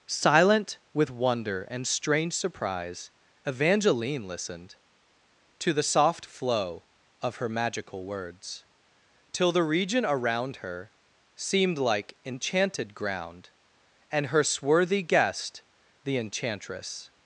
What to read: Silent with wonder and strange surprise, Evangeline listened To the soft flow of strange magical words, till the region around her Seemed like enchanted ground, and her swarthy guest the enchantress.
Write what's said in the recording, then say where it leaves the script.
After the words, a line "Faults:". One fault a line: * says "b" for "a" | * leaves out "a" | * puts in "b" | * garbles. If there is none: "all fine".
Silent with wonder and strange surprise, Evangeline listened To the soft flow of her magical words, till the region around her Seemed like enchanted ground, and her swarthy guest the enchantress.
Faults:
* says "her" for "strange"